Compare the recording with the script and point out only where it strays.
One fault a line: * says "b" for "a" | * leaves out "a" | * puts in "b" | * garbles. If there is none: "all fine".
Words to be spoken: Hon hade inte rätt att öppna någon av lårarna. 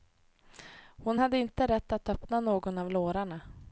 all fine